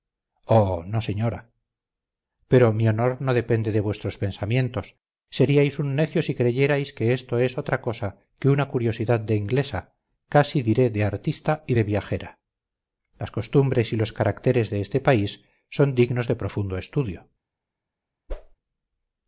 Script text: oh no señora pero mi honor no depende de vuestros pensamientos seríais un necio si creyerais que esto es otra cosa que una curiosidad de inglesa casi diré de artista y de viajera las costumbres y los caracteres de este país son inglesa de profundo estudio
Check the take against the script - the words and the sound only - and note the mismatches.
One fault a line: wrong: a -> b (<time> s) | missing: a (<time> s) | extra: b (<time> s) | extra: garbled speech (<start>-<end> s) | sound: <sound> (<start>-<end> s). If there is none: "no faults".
wrong: inglesa -> dignos (15.9 s)
sound: whoosh (18.3-18.6 s)